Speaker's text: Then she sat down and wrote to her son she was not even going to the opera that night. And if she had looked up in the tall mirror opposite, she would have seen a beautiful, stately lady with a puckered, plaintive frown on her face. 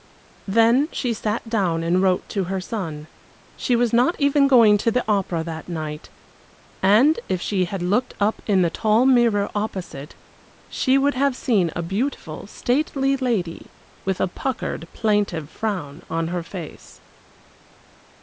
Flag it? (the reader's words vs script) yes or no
no